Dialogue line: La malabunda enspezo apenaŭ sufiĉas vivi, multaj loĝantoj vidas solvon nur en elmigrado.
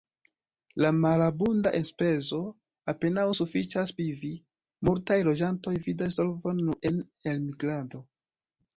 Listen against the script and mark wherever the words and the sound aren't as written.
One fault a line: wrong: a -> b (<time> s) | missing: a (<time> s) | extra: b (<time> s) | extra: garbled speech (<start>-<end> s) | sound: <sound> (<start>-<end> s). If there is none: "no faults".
no faults